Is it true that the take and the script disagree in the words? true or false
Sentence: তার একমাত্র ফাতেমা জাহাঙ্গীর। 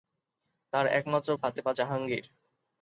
false